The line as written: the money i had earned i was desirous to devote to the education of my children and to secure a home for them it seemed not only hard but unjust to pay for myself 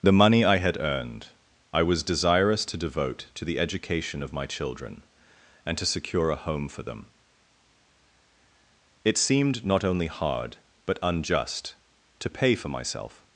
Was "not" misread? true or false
false